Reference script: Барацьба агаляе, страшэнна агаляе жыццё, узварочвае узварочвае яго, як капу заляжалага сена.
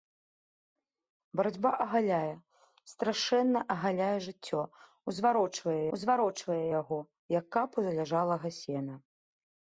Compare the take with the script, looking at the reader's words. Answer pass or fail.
pass